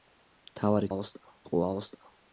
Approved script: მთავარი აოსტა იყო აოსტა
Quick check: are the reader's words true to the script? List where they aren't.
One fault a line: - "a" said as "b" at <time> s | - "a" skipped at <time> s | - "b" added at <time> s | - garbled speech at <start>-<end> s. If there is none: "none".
none